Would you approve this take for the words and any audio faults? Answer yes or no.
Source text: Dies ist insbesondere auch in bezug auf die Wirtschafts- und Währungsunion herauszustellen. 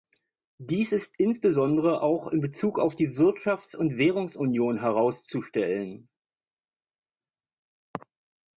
yes